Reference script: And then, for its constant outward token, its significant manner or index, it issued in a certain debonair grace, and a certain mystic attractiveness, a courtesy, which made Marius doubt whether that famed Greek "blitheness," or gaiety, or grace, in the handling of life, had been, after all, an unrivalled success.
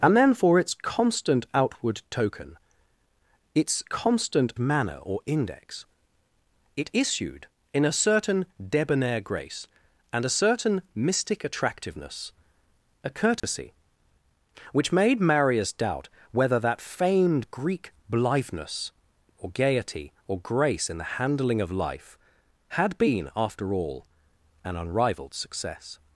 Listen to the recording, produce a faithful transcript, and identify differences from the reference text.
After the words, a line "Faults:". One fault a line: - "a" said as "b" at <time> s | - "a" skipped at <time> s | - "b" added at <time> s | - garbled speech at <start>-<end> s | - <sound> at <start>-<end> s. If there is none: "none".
And then, for its constant outward token, its constant manner or index, it issued in a certain debonair grace, and a certain mystic attractiveness, a courtesy, which made Marius doubt whether that famed Greek "blitheness," or gaiety, or grace, in the handling of life, had been, after all, an unrivalled success.
Faults:
- "significant" said as "constant" at 3.8 s
- dropout at 13.4-13.4 s